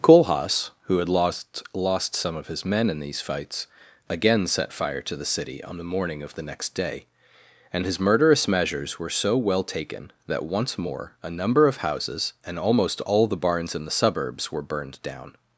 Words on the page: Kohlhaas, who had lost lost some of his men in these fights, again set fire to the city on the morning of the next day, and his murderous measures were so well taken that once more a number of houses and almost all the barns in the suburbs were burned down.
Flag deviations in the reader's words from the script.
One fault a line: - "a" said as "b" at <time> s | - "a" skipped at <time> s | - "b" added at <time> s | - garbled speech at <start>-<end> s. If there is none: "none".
none